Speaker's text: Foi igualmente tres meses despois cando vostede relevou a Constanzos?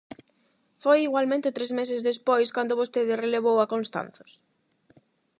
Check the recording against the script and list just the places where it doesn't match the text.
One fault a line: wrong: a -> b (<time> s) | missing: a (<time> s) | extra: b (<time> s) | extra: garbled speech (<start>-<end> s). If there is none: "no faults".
no faults